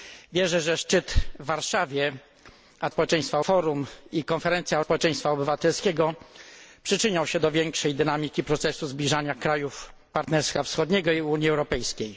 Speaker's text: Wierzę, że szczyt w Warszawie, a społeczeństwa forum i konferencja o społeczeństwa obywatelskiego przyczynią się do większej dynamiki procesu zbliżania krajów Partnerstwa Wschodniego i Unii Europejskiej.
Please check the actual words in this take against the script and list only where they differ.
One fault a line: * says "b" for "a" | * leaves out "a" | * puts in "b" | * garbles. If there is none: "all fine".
all fine